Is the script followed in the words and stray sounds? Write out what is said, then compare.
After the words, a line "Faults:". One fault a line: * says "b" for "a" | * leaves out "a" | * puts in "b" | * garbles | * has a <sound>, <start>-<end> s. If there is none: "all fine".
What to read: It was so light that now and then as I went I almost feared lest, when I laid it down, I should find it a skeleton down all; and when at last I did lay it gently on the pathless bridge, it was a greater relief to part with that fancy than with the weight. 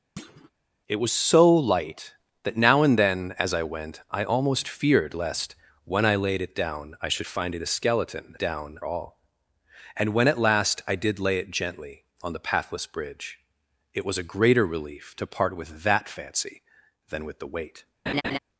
It was so light that now and then as I went I almost feared lest, when I laid it down, I should find it a skeleton down all; and when at last I did lay it gently on the pathless bridge, it was a greater relief to part with that fancy than with the weight.
Faults:
* has a thud, 0.2-0.5 s
* has a laugh, 18.1-18.4 s